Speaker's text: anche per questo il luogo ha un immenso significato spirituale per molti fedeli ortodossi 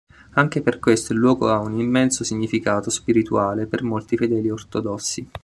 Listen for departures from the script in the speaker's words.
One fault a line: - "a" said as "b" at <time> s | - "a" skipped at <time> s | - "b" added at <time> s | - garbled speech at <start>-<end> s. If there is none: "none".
none